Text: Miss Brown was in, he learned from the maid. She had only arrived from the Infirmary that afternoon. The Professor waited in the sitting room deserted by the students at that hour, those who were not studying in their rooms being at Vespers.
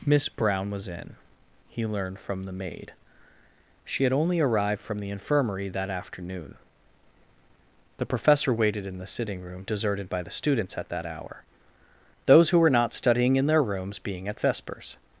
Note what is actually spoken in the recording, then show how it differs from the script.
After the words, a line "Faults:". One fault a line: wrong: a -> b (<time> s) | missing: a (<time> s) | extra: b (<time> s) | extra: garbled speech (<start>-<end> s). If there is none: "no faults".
Miss Brown was in, he learned from the maid. She had only arrived from the Infirmary that afternoon. The Professor waited in the sitting room deserted by the students at that hour, those who were not studying in their rooms being at Vespers.
Faults:
no faults